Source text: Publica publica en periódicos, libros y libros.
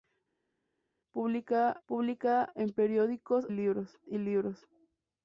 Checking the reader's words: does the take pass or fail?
pass